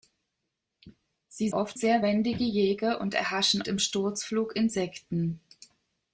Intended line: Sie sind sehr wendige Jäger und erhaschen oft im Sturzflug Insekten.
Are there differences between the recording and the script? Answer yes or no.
yes